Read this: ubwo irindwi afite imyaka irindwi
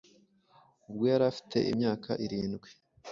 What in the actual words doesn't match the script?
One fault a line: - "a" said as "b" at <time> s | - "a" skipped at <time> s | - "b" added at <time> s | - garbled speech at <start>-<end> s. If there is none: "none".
- "irindwi" said as "yari" at 1.1 s